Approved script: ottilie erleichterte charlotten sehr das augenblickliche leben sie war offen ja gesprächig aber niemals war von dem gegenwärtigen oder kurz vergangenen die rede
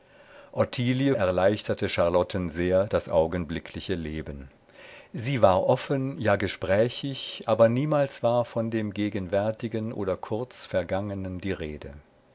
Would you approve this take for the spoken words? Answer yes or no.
yes